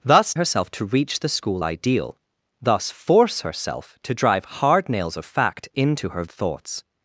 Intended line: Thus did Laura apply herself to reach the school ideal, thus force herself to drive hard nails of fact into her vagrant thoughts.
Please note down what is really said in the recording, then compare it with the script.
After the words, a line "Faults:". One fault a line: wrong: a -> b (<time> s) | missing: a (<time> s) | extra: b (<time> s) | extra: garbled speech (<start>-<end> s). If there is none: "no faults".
Thus herself to reach the school ideal, thus force herself to drive hard nails of fact into her thoughts.
Faults:
missing: did Laura apply (0.3 s)
missing: vagrant (6.2 s)